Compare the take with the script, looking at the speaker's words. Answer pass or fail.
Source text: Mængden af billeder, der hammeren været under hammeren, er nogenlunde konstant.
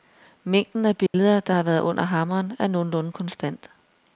fail